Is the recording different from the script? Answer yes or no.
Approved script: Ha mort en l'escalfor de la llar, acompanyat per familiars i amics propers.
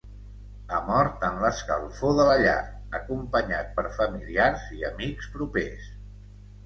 no